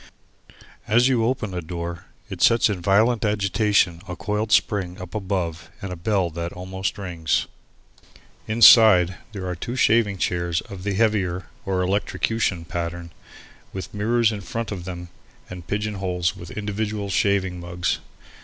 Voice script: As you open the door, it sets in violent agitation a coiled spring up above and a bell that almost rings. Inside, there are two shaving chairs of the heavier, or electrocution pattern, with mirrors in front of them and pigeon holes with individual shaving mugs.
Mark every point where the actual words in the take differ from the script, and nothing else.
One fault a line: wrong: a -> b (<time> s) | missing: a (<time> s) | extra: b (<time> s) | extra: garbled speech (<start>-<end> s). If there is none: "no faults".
no faults